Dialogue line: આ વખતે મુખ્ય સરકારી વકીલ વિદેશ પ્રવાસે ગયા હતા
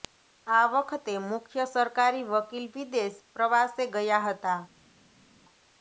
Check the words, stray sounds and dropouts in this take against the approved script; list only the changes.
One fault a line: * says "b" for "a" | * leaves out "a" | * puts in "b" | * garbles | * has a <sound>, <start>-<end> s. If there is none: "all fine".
all fine